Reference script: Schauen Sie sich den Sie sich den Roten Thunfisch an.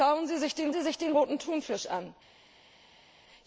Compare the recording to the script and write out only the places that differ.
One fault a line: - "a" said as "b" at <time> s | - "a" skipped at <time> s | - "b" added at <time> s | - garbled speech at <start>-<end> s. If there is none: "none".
none